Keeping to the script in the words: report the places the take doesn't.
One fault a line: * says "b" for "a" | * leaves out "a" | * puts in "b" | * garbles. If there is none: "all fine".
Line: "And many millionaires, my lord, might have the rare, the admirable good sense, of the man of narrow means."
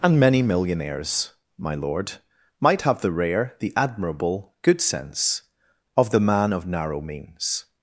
all fine